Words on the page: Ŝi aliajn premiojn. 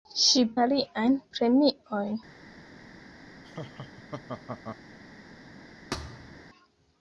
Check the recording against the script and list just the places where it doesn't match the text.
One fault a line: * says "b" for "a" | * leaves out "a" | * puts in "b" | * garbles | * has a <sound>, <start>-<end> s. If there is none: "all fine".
* has a laugh, 3.4-4.8 s
* has a thud, 5.9-6.4 s